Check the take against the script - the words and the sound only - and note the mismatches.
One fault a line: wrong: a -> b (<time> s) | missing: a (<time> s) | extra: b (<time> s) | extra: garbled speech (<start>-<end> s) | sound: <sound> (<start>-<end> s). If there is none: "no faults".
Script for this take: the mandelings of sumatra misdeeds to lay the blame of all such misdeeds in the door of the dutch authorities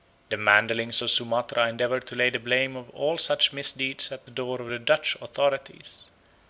wrong: misdeeds -> endeavour (1.7 s)
wrong: in -> at (4.1 s)